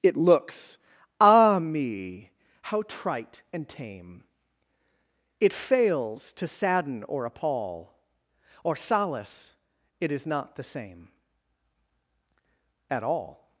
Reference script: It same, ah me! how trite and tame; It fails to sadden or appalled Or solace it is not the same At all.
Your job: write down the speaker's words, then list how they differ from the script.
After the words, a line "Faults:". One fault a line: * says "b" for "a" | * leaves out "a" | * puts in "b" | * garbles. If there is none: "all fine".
It looks, ah me! how trite and tame; It fails to sadden or appall Or solace it is not the same At all.
Faults:
* says "looks" for "same"
* says "appall" for "appalled"